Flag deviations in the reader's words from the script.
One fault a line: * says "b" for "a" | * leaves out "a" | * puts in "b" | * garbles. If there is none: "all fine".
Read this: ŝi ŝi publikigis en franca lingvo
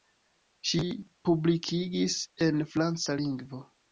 * leaves out "ŝi"